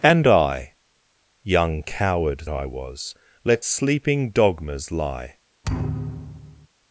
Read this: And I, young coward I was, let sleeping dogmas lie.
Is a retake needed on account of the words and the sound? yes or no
yes